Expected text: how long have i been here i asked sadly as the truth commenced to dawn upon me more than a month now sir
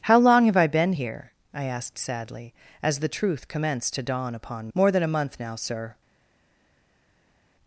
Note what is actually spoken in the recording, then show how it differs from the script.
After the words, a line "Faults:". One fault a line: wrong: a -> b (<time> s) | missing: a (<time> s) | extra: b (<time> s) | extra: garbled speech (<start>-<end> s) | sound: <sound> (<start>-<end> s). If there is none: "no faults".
how long have i been here i asked sadly as the truth commenced to dawn upon more than a month now sir
Faults:
missing: me (4.7 s)